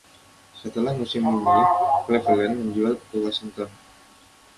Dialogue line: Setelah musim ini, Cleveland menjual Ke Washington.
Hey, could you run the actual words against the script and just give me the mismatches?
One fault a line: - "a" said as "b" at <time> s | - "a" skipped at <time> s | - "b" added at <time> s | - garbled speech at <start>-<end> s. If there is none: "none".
none